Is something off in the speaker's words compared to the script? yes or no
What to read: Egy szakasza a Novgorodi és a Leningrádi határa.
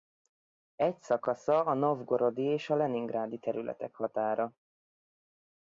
yes